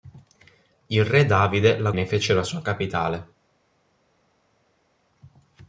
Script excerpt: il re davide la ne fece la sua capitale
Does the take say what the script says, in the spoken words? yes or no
yes